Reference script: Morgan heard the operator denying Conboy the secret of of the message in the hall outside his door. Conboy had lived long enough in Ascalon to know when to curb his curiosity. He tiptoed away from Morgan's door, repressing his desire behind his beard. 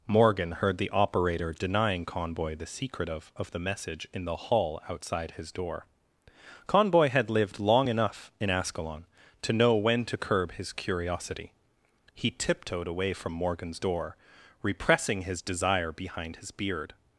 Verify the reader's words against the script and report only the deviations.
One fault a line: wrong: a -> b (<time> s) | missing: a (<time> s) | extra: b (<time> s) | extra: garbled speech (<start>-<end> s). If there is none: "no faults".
no faults